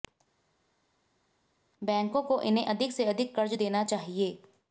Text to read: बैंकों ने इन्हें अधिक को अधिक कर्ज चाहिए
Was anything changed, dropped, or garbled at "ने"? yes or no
yes